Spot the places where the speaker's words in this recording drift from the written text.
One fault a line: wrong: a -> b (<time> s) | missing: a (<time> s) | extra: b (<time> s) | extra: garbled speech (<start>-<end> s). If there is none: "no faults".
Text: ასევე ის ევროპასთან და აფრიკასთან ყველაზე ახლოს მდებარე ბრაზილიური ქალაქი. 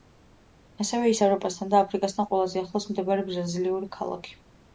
no faults